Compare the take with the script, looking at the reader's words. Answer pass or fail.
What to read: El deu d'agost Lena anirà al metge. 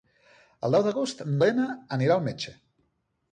pass